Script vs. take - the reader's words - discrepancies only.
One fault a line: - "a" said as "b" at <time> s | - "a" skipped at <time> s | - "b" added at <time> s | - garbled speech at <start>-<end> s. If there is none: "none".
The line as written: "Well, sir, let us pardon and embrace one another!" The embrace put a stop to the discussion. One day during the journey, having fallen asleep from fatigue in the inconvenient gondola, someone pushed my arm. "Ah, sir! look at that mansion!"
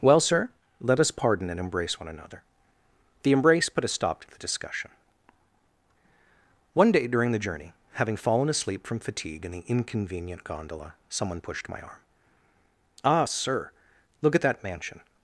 none